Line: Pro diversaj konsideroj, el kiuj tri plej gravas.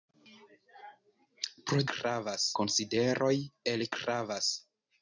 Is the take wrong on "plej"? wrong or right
wrong